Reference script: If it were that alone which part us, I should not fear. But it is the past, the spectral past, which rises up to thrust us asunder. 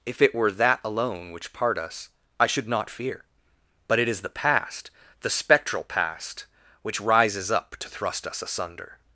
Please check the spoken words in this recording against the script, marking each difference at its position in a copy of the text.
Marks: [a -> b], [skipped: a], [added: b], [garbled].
If it were that alone which part us, I should not fear. But it is the past, the spectral past, which rises up to thrust us asunder.